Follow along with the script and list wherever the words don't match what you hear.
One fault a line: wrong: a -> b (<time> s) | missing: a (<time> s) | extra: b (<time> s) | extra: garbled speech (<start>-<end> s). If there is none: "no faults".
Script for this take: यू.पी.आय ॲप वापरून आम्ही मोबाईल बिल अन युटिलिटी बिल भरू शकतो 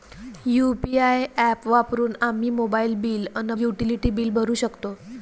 no faults